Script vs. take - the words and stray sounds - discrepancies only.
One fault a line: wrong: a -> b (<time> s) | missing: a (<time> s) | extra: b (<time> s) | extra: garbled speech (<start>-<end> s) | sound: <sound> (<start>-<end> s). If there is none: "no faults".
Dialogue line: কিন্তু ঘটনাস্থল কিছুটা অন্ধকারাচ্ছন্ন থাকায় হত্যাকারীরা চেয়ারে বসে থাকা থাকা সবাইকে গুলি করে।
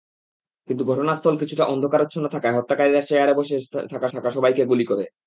no faults